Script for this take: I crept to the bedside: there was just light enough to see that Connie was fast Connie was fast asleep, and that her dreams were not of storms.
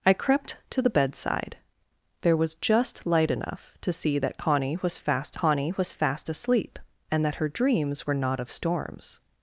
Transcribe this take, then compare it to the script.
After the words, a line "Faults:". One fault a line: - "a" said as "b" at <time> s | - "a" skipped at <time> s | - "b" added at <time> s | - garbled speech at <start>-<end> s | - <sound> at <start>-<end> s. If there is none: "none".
I crept to the bedside: there was just light enough to see that Connie was fast Connie was fast asleep, and that her dreams were not of storms.
Faults:
none